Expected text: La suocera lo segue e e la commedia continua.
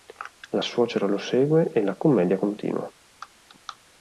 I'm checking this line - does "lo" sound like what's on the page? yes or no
yes